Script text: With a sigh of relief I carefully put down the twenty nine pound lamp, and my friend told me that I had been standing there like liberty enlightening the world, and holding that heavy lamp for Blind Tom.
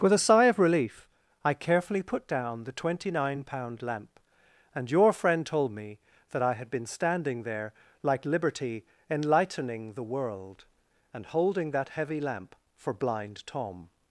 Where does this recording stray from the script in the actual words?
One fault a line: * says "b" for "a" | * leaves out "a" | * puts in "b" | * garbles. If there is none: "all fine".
* says "your" for "my"